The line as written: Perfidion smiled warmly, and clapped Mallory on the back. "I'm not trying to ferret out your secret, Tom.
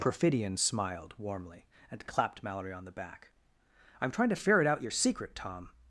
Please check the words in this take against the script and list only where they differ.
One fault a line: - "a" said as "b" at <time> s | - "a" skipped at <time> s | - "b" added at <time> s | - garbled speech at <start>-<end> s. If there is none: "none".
- "not" skipped at 4.1 s